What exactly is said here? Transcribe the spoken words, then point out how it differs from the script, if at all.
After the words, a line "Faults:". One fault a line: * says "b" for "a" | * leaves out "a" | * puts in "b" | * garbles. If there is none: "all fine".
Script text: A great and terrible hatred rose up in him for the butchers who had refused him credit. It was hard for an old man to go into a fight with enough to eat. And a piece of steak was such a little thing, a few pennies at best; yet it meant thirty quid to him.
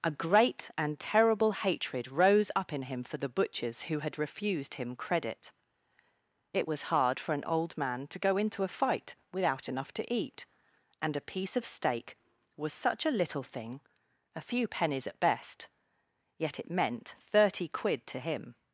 A great and terrible hatred rose up in him for the butchers who had refused him credit. It was hard for an old man to go into a fight without enough to eat. And a piece of steak was such a little thing, a few pennies at best; yet it meant thirty quid to him.
Faults:
* says "without" for "with"